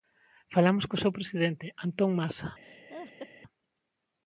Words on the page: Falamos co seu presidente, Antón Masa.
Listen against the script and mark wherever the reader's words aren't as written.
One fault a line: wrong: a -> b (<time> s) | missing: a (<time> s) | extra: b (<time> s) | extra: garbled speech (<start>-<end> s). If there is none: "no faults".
no faults